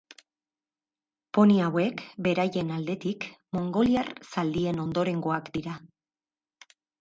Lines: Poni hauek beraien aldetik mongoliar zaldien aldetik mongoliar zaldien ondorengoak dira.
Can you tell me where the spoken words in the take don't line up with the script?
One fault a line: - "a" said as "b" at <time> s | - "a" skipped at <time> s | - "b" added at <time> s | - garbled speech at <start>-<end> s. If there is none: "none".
- "aldetik mongoliar zaldien" skipped at 4.8 s